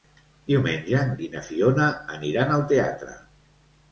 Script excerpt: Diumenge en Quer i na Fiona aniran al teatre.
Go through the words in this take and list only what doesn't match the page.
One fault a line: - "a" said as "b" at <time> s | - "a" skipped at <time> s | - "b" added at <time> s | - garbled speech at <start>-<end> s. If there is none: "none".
- "Quer" skipped at 1.1 s